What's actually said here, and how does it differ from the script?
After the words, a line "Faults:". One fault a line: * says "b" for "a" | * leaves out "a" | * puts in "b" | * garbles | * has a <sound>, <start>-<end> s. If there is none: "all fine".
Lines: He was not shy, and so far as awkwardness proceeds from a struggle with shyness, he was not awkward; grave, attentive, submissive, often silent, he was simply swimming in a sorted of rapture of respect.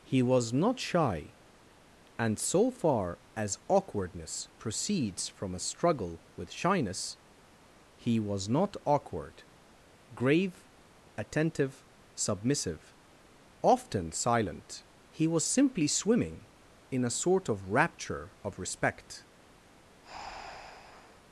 He was not shy, and so far as awkwardness proceeds from a struggle with shyness, he was not awkward; grave, attentive, submissive, often silent, he was simply swimming in a sort of rapture of respect.
Faults:
* says "sort" for "sorted"
* has a breath, 20.0-21.2 s